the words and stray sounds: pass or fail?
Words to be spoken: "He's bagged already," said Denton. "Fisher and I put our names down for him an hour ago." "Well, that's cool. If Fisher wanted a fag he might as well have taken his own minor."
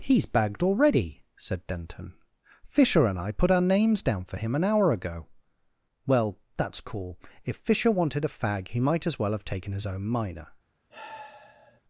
fail